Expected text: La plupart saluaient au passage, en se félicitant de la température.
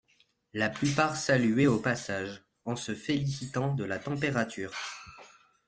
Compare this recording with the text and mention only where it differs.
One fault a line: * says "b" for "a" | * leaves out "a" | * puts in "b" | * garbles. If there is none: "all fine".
all fine